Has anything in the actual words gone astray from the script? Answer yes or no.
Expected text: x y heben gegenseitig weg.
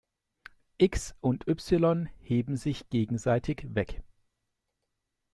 yes